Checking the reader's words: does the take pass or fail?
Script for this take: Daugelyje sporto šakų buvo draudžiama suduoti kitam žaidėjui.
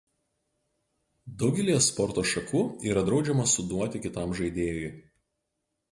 fail